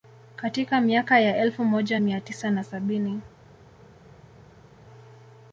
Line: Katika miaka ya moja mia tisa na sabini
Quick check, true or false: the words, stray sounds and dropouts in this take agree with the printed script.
false